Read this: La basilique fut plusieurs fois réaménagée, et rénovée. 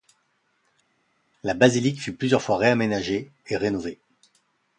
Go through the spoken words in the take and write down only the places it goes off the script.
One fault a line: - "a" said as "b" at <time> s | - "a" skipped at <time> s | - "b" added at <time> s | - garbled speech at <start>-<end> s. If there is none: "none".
none